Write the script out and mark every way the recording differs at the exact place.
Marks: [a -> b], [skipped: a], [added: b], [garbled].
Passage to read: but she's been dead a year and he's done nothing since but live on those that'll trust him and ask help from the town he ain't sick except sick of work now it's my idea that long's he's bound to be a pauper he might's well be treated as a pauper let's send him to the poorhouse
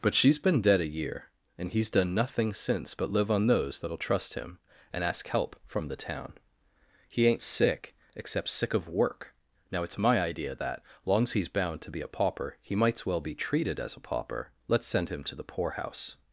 but she's been dead a year and he's done nothing since but live on those that'll trust him and ask help from the town he ain't sick except sick of work now it's my idea that long's he's bound to be a pauper he might's well be treated as a pauper let's send him to the poorhouse